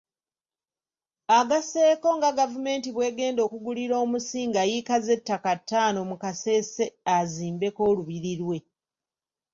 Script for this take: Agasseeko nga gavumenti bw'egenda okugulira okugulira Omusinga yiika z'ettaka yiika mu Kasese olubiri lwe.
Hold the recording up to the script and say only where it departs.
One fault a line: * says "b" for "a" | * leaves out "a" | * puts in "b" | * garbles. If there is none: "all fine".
* leaves out "okugulira"
* says "ttaano" for "yiika"
* puts in "azimbeko"